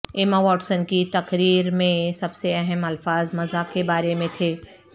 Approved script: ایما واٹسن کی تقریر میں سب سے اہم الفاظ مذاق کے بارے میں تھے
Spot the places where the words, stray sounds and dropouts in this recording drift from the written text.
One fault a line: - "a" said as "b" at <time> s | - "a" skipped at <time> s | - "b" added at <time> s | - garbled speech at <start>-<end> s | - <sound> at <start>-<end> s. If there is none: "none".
none